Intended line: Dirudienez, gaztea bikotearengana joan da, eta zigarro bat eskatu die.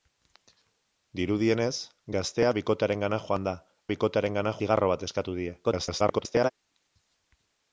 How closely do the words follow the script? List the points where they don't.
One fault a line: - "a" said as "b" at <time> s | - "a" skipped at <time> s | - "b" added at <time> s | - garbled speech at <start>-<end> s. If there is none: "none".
- "eta" said as "bikotearengana" at 3.9 s
- garbled speech at 5.6-6.5 s